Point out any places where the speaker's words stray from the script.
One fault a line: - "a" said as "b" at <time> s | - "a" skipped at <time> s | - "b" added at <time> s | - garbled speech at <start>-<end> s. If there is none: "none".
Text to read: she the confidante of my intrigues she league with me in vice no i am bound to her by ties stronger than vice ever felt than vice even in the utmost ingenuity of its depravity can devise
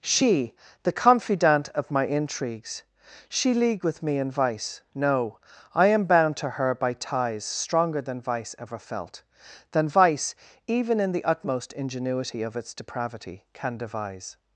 none